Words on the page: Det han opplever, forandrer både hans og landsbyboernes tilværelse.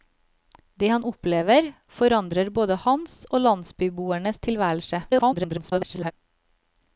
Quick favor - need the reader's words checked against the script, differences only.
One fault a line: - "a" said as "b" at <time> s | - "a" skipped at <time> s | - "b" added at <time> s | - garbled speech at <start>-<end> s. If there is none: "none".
- garbled speech at 5.1-6.1 s